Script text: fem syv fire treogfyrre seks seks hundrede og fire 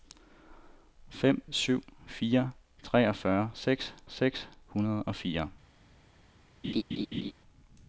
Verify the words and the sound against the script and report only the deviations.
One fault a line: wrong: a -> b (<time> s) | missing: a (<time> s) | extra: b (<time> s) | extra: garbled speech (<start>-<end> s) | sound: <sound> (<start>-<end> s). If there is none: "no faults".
sound: laugh (6.6-7.3 s)